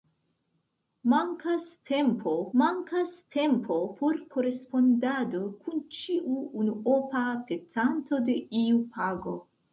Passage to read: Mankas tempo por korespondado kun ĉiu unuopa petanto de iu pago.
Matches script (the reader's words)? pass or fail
fail